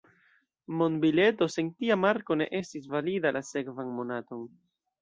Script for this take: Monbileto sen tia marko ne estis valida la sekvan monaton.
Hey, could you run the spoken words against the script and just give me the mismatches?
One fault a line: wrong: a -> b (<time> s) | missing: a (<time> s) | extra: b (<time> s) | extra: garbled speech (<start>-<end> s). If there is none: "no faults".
no faults